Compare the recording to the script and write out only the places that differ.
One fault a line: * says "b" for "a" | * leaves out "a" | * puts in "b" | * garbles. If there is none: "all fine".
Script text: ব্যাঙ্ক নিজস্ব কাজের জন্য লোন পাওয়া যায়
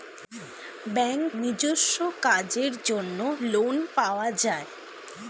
all fine